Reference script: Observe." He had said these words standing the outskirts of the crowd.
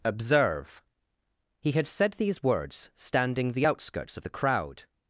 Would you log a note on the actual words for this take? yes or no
no